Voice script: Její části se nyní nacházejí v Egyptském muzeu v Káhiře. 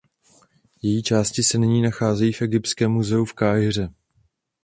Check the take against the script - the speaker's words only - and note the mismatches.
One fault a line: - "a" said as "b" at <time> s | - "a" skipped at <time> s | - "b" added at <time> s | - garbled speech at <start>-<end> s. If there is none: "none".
none